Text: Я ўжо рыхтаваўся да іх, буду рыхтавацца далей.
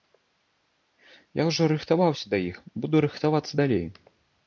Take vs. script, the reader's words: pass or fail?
pass